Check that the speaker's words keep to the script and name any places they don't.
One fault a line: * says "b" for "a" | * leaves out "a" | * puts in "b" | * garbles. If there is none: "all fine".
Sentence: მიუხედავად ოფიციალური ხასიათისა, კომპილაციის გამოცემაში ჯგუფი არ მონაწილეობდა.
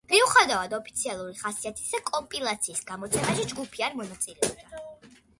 all fine